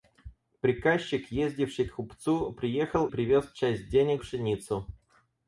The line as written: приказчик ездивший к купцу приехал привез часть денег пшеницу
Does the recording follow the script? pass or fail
pass